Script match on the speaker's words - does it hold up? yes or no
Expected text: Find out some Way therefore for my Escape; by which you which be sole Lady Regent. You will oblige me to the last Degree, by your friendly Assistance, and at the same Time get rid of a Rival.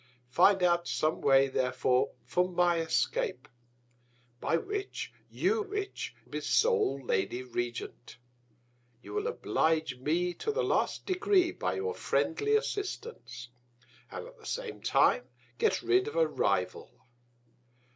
yes